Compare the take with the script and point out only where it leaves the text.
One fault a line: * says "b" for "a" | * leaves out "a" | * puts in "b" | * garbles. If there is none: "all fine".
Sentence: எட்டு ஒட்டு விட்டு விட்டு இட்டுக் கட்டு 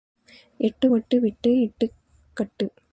* leaves out "விட்டு"